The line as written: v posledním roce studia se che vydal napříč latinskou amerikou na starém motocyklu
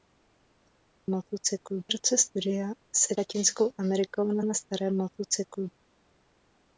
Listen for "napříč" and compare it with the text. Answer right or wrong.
wrong